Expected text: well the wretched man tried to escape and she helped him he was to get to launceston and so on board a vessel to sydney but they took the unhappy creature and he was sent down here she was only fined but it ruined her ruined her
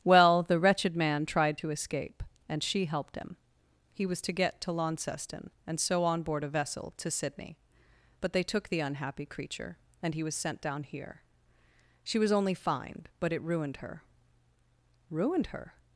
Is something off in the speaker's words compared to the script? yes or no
no